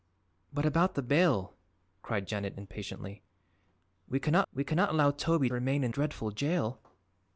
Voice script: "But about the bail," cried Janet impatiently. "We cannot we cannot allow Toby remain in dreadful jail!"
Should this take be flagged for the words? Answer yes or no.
no